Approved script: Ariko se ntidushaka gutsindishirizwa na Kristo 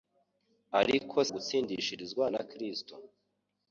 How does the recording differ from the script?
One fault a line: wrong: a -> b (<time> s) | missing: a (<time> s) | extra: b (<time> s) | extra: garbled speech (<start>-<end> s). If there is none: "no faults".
missing: se ntidushaka (1.2 s)